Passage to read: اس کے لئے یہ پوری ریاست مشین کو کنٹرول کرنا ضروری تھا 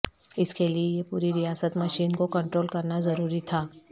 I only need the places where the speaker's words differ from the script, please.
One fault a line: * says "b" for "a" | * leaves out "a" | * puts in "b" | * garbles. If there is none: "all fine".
all fine